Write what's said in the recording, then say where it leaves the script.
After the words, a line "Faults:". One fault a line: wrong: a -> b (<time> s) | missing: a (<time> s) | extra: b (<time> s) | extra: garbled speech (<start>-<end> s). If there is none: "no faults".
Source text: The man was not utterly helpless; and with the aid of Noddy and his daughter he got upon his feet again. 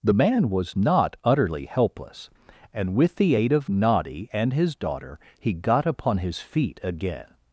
The man was not utterly helpless; and with the aid of Noddy and his daughter he got upon his feet again.
Faults:
no faults